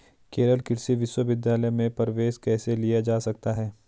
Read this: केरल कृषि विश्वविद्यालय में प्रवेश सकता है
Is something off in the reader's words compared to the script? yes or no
yes